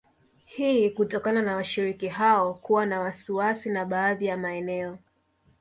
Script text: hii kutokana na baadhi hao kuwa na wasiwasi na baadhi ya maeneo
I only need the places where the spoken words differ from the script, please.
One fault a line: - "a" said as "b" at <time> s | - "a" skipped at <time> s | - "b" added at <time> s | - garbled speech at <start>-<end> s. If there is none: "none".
- "baadhi" said as "washiriki" at 1.6 s